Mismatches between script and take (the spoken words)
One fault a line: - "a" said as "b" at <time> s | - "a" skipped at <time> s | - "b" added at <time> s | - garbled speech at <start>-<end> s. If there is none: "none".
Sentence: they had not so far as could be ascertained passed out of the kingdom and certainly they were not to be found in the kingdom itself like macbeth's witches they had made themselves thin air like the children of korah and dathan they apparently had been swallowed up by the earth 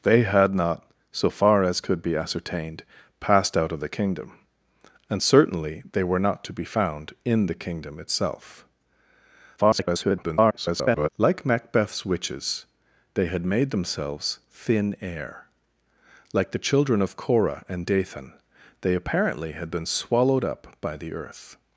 - garbled speech at 9.6-11.1 s